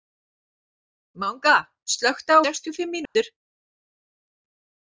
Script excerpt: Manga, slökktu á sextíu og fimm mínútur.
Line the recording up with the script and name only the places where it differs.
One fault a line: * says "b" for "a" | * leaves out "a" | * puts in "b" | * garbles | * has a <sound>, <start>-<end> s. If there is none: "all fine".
* has a dropout, 3.1-3.2 s